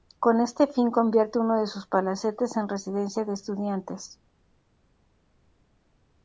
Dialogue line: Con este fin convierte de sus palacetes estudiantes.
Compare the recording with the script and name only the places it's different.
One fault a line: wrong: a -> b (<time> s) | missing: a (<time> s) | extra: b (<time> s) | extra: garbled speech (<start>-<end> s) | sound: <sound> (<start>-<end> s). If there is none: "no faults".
extra: uno (1.4 s)
extra: en Residencia de (2.6 s)